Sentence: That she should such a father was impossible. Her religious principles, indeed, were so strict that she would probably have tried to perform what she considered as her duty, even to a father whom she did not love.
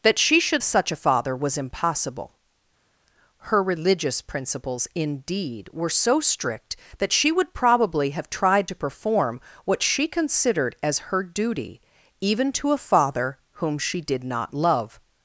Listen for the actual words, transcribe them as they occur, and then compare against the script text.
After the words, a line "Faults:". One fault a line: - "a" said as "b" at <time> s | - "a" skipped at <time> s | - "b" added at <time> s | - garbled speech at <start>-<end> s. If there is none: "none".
That she should such a father was impossible. Her religious principles, indeed, were so strict that she would probably have tried to perform what she considered as her duty, even to a father whom she did not love.
Faults:
none